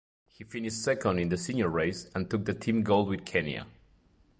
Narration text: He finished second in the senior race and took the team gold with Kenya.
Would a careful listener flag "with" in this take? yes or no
no